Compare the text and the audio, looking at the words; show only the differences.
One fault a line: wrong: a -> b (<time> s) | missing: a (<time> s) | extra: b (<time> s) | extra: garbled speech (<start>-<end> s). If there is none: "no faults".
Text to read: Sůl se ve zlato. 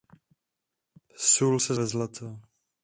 no faults